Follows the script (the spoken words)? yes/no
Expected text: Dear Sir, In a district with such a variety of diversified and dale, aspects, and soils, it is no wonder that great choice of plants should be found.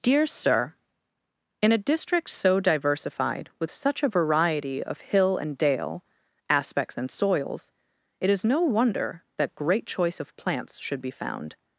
no